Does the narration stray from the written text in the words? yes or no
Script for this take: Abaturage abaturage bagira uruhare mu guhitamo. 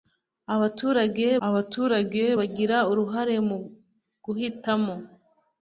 no